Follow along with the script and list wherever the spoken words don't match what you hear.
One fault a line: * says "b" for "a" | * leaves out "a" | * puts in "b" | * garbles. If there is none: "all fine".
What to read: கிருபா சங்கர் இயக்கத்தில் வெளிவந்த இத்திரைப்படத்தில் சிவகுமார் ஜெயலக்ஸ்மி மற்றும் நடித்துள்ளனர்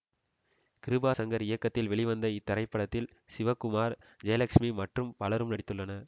* puts in "பலரும்"